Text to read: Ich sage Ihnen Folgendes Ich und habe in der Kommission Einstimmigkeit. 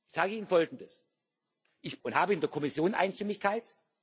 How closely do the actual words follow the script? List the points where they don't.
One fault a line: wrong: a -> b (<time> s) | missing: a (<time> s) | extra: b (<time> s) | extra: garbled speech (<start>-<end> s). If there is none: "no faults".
no faults